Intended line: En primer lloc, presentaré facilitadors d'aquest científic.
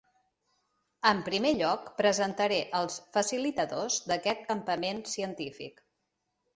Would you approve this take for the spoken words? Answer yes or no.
no